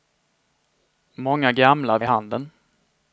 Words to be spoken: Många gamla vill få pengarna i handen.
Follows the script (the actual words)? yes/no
no